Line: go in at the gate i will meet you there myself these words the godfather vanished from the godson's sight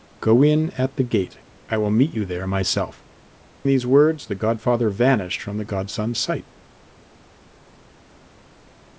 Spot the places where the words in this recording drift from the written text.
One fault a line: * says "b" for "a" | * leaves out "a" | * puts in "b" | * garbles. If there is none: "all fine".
all fine